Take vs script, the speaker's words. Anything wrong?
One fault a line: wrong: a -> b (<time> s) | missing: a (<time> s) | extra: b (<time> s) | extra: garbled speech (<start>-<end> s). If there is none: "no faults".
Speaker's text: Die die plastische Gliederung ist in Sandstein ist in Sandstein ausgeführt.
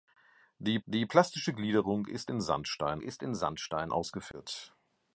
no faults